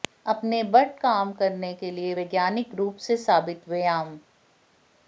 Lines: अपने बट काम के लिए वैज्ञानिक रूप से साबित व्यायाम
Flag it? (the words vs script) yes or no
yes